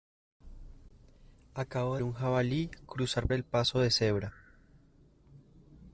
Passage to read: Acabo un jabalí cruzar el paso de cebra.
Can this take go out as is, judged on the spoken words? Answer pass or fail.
pass